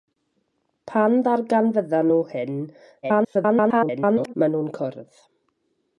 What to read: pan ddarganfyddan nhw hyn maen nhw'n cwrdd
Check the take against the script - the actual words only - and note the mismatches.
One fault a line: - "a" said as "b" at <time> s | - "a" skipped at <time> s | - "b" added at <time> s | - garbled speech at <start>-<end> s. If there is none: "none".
- garbled speech at 3.0-4.3 s